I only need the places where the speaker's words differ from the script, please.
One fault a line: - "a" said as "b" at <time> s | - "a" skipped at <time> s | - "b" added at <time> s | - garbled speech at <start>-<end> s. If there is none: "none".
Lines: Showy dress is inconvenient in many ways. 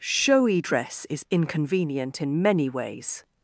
none